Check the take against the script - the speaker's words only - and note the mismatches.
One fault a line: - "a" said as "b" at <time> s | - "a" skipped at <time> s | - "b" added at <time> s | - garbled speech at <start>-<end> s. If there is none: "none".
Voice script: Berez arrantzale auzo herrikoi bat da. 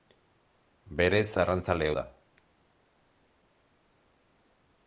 - "auzo herrikoi bat" skipped at 1.9 s